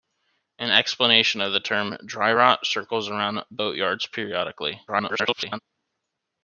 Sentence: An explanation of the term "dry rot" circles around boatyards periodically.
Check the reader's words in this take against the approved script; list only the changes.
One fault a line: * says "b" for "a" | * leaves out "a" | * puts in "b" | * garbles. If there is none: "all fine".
* garbles